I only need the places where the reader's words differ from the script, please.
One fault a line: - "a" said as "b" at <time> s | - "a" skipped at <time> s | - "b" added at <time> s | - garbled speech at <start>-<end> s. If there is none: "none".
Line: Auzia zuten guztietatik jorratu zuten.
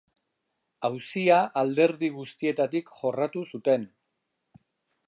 - "zuten" said as "alderdi" at 1.6 s